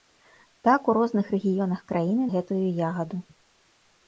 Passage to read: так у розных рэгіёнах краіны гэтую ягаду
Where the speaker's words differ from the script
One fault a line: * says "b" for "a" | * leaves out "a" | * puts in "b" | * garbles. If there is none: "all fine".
all fine